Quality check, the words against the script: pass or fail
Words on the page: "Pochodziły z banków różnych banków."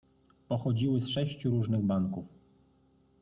fail